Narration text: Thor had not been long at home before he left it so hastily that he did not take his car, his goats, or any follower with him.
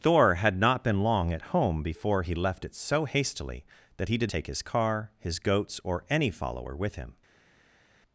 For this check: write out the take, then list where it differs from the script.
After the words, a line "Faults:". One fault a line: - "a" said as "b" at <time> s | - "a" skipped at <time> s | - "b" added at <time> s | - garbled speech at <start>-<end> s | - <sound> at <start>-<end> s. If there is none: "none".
Thor had not been long at home before he left it so hastily that he did take his car, his goats, or any follower with him.
Faults:
- "not" skipped at 4.3 s